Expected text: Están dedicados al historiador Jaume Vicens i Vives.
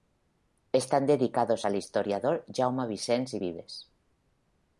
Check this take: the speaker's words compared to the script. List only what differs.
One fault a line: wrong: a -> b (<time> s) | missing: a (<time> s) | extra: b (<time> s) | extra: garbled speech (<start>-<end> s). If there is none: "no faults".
no faults